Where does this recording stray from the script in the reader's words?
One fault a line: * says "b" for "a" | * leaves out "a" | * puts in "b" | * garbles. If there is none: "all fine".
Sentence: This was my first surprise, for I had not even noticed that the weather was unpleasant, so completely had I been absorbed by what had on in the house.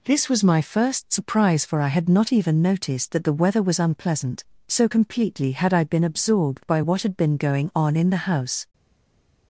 * puts in "been going"